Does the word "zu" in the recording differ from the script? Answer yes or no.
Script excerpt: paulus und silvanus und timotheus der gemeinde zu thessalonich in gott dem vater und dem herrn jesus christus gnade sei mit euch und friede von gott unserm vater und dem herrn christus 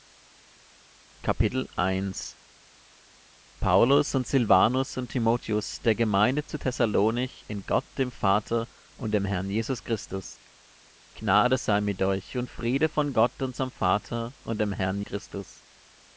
no